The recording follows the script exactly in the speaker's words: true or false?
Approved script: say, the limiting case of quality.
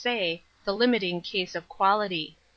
true